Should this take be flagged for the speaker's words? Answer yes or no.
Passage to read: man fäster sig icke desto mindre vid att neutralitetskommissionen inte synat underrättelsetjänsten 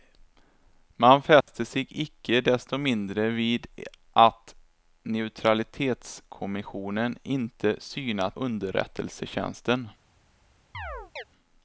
no